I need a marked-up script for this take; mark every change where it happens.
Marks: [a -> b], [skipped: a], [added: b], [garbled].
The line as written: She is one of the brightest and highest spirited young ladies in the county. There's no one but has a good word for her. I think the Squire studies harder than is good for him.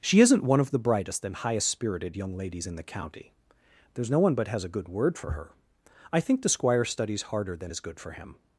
She [is -> isn't] one of the brightest and highest spirited young ladies in the county. There's no one but has a good word for her. I think the Squire studies harder than is good for him.